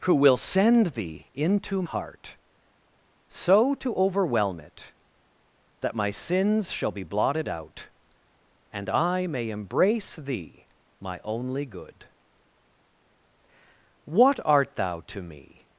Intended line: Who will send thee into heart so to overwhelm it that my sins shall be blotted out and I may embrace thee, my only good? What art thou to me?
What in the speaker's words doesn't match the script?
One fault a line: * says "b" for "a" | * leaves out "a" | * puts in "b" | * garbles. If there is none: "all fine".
all fine